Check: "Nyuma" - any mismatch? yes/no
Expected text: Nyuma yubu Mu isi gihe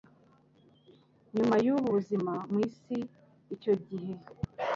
no